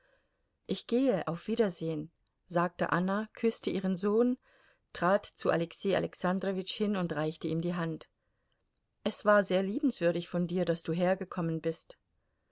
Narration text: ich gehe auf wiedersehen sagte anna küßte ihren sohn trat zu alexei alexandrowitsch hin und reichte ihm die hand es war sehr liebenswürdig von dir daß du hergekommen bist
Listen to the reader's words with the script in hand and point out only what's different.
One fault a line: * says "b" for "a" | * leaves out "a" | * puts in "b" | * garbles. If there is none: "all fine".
all fine